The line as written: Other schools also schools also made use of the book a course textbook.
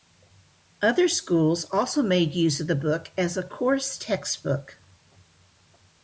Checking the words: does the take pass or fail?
fail